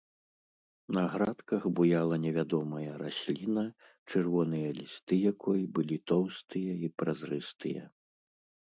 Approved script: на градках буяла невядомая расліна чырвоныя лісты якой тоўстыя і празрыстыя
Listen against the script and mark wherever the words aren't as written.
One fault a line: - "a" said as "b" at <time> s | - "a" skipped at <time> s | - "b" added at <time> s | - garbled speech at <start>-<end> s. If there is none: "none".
- "былі" added at 5.8 s